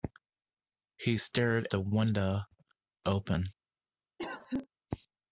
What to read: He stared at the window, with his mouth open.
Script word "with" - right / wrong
wrong